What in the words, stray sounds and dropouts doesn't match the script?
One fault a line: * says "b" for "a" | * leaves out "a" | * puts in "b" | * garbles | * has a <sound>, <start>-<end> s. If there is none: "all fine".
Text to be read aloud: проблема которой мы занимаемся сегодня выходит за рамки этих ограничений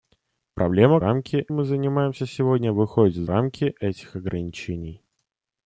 * says "рамки" for "которой"
* leaves out "за"